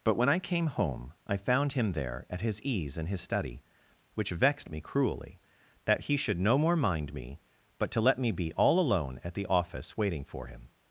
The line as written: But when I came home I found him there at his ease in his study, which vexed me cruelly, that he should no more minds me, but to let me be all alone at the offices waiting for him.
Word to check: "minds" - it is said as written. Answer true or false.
false